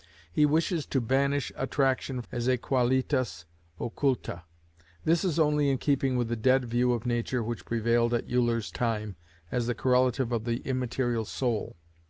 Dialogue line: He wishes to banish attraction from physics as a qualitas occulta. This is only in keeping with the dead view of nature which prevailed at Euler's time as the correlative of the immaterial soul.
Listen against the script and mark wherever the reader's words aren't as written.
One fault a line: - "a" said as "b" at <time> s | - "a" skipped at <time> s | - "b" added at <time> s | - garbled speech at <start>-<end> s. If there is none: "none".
- "from physics" skipped at 2.2 s